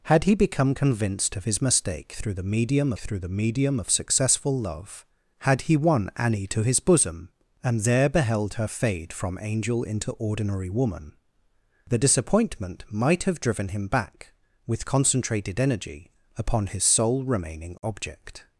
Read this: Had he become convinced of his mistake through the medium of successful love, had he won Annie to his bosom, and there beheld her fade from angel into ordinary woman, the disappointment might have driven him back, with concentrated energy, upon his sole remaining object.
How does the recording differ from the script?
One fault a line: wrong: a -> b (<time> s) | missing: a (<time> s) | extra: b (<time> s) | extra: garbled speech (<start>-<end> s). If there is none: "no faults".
extra: through the medium (3.0 s)